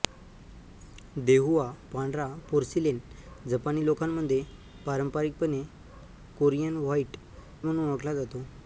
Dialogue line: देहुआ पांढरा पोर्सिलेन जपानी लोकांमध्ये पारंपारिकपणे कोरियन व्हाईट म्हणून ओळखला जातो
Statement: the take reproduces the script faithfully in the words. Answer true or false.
true